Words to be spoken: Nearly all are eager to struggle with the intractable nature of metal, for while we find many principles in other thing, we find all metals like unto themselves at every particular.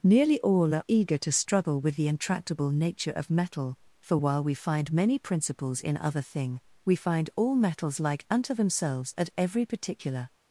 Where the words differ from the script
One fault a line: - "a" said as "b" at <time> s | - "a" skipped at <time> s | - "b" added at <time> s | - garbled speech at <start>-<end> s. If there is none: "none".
none